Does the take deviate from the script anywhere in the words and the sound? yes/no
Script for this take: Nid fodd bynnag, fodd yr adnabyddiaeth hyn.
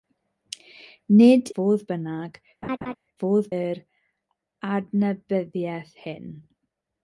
yes